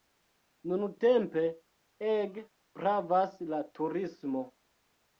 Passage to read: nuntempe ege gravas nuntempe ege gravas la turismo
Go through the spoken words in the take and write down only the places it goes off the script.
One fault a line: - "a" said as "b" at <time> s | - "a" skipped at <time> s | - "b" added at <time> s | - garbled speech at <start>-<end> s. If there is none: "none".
- "nuntempe ege gravas" skipped at 3.4 s